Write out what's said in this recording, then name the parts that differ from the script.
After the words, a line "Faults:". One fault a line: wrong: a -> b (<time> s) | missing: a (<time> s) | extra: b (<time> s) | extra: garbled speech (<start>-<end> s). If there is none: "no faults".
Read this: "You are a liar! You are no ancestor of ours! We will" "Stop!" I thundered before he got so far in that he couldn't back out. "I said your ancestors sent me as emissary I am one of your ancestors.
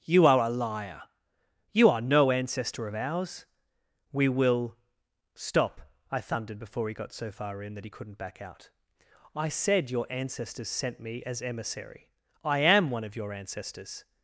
"You are a liar! You are no ancestor of ours! We will" "Stop!" I thundered before he got so far in that he couldn't back out. "I said your ancestors sent me as emissary I am one of your ancestors.
Faults:
no faults